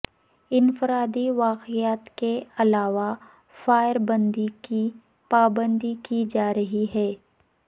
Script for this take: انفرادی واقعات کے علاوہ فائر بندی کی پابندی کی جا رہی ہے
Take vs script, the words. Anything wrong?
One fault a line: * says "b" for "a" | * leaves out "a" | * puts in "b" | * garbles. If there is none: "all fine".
all fine